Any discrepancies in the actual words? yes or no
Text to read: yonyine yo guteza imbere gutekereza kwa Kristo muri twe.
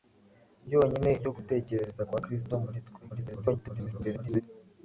yes